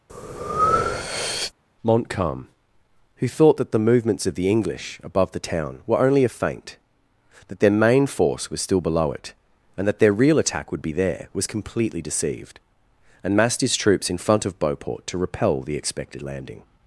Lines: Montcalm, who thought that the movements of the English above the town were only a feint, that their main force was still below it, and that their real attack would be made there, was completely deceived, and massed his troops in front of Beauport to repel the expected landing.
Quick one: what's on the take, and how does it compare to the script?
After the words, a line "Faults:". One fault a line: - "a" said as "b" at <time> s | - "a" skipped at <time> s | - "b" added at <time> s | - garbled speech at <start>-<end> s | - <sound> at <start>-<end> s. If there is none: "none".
Montcalm, who thought that the movements of the English above the town were only a feint, that their main force was still below it, and that their real attack would be there, was completely deceived, and massed his troops in front of Beauport to repel the expected landing.
Faults:
- breath at 0.1-1.5 s
- "made" skipped at 10.9 s